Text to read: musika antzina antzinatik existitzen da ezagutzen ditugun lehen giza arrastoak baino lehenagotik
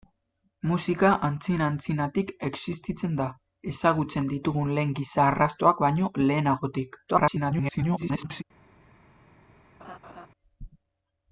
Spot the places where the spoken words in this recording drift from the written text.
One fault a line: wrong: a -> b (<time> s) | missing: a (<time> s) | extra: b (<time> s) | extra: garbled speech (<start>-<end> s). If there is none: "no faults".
extra: garbled speech (7.1-8.4 s)